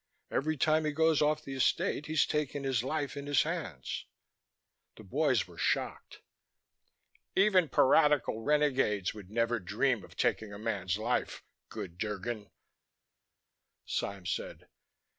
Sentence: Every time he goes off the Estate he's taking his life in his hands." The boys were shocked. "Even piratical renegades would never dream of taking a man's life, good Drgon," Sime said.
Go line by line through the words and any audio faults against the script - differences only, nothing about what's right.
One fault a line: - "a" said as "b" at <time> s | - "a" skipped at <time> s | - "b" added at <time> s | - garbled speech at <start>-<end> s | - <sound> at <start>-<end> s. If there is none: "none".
none